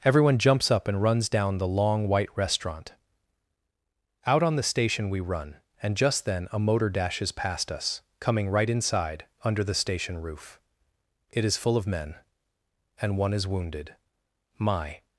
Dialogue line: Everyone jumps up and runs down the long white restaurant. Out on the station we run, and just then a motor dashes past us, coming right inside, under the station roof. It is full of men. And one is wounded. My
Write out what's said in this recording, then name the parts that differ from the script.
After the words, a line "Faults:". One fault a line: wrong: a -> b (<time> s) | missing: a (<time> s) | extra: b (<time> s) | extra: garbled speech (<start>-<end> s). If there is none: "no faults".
Everyone jumps up and runs down the long white restaurant. Out on the station we run, and just then a motor dashes past us, coming right inside, under the station roof. It is full of men. And one is wounded. My
Faults:
no faults